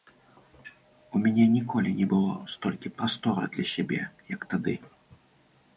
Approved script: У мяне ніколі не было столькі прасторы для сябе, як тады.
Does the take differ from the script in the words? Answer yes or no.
no